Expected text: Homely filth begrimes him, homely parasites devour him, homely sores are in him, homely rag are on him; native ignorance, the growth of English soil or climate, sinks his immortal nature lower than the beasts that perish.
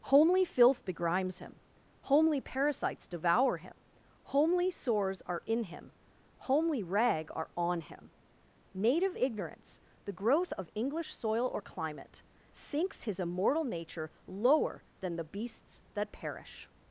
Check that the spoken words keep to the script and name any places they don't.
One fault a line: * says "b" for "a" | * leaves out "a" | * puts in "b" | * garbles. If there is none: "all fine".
all fine